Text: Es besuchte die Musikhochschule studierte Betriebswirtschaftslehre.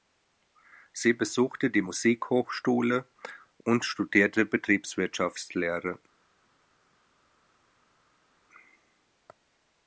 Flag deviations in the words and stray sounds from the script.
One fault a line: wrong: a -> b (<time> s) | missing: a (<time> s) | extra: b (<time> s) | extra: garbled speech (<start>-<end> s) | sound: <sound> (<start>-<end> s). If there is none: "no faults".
wrong: Es -> Sie (0.9 s)
extra: und (3.6 s)